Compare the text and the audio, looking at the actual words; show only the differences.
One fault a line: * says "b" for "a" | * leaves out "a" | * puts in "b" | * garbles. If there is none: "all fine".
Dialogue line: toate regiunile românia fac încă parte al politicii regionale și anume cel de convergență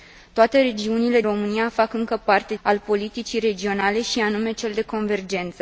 all fine